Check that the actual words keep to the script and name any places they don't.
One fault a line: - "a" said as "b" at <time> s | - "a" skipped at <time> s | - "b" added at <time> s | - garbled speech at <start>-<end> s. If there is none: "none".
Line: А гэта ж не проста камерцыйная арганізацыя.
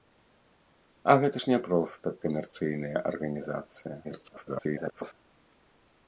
- garbled speech at 4.0-5.1 s